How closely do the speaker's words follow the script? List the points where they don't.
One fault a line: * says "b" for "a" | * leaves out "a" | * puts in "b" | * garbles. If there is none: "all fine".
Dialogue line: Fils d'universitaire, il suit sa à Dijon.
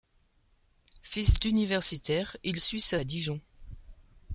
all fine